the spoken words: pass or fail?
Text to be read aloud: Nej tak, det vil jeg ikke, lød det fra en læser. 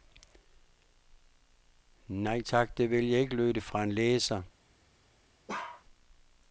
pass